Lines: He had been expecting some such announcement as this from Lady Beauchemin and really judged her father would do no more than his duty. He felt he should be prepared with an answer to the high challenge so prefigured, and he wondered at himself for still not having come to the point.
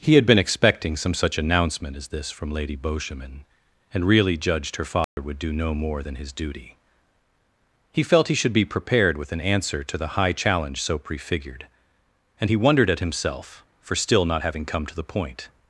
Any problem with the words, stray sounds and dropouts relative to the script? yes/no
yes